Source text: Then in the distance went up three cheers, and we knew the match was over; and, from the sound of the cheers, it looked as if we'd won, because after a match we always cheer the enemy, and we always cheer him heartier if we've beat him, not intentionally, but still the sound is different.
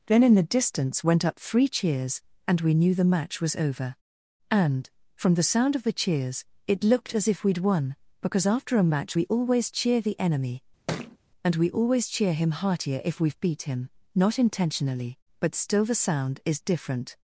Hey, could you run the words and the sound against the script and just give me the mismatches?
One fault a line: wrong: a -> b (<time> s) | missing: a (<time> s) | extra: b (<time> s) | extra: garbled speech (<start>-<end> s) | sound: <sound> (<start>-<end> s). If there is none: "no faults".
sound: thud (10.9-11.2 s)